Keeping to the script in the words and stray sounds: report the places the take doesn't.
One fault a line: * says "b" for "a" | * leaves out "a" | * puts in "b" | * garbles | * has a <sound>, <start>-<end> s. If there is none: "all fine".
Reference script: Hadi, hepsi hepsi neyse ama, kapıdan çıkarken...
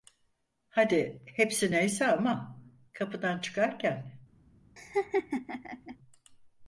* leaves out "hepsi"
* has a laugh, 4.8-6.0 s